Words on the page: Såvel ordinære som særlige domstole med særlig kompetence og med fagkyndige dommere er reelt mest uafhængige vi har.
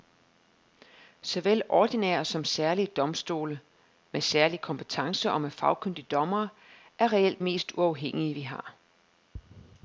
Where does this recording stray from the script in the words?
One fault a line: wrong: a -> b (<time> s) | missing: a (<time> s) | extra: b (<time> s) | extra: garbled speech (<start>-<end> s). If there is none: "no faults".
no faults